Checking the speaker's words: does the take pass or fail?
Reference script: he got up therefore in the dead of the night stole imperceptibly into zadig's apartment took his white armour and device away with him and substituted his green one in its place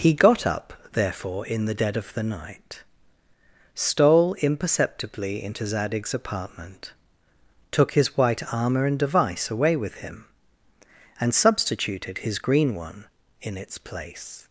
pass